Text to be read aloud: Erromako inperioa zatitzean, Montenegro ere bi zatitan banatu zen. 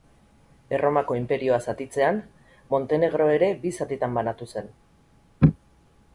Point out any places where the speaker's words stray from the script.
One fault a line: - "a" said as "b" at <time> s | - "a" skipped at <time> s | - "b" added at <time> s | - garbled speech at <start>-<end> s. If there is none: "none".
none